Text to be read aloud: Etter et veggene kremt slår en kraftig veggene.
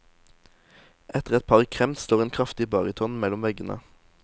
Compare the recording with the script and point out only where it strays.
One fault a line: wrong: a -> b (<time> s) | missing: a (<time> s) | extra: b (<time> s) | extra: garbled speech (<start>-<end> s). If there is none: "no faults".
wrong: veggene -> par (1.5 s)
extra: baryton mellom (2.8 s)